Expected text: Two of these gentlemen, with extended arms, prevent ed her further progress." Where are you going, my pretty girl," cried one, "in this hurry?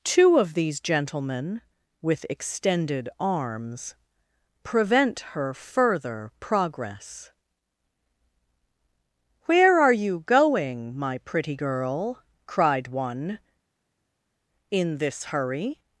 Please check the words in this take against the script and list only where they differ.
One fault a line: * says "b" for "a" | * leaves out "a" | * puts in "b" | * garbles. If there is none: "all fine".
* leaves out "ed"